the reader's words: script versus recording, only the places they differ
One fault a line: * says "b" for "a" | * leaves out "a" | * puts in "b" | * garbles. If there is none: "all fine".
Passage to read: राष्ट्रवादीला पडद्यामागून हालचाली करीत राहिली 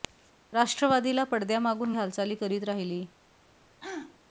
all fine